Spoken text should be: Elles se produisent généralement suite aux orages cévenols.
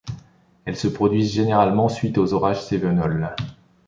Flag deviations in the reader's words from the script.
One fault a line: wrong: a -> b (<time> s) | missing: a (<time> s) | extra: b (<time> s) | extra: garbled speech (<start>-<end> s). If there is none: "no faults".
no faults